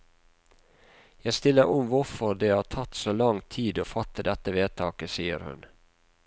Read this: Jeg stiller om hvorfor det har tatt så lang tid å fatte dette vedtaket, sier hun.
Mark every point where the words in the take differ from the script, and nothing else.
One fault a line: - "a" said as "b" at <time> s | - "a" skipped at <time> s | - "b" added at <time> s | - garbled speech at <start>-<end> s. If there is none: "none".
none